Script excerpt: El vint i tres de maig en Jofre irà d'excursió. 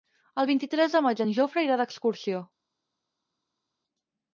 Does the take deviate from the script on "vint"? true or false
false